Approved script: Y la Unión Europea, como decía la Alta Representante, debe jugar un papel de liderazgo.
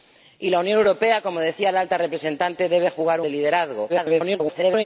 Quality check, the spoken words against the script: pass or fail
fail